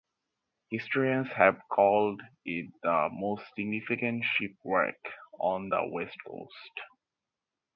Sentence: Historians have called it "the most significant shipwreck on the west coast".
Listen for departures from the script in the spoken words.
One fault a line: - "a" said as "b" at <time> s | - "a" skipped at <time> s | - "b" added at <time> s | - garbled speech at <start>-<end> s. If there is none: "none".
none